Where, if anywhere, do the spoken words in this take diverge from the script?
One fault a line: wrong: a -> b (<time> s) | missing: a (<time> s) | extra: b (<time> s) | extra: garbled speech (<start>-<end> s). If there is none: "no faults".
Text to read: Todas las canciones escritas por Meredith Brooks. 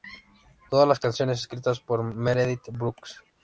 no faults